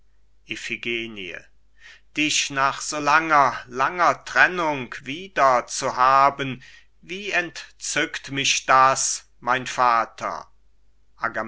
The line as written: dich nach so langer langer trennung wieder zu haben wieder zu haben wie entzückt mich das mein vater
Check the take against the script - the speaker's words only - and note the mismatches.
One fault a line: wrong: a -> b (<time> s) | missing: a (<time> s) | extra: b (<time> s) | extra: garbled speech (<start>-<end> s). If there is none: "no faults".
missing: wieder zu haben (6.6 s)